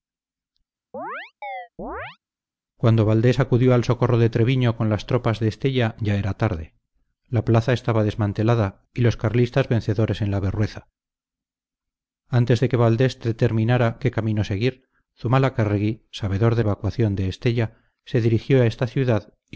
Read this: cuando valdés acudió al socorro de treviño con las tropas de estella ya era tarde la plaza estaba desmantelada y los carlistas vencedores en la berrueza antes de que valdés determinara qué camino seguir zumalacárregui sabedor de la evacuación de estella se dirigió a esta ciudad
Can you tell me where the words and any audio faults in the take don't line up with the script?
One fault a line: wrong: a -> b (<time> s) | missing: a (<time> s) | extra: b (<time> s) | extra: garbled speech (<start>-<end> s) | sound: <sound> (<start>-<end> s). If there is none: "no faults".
sound: chirp (0.9-2.2 s)
missing: la (16.6 s)